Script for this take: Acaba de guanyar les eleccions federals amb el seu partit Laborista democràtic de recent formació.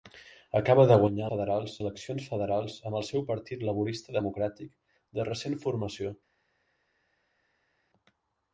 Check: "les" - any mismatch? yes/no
yes